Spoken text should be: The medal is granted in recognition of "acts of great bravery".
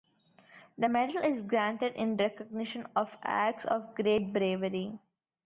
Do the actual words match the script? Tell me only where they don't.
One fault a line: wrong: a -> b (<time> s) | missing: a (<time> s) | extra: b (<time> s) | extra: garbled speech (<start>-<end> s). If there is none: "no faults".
no faults